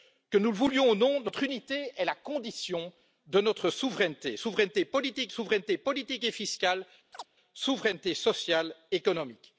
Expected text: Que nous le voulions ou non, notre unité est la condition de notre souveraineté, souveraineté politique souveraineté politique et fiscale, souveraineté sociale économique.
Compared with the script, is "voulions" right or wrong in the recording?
right